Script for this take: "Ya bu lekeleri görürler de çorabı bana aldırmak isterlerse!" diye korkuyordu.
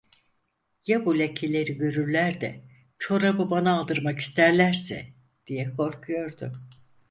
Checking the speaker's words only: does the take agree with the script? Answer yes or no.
yes